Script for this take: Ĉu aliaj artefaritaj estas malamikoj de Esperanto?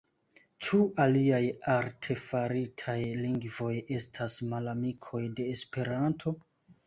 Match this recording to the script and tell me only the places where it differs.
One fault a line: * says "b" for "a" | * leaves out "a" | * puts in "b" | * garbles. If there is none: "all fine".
* puts in "lingvoj"